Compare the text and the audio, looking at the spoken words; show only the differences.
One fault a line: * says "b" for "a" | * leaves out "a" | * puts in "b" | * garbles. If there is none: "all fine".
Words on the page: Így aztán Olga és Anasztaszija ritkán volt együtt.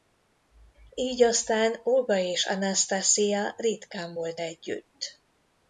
all fine